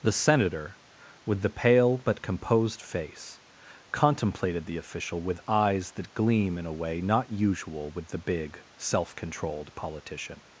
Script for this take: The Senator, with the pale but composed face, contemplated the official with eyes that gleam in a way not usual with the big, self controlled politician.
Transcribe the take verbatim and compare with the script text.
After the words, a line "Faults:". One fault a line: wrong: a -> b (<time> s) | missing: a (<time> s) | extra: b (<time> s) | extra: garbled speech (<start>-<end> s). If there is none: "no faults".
The Senator, with the pale but composed face, contemplated the official with eyes that gleam in a way not usual with the big, self controlled politician.
Faults:
no faults